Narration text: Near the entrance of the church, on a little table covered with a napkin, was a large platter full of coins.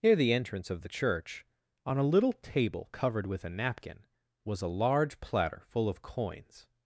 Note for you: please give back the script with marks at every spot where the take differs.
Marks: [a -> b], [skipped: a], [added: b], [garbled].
Near the entrance of the church, on a little table covered with a napkin, was a large platter full of coins.